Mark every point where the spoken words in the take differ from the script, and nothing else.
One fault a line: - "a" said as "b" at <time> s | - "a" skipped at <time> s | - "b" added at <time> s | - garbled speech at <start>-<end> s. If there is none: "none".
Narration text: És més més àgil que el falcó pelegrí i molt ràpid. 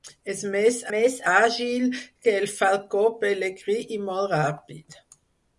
none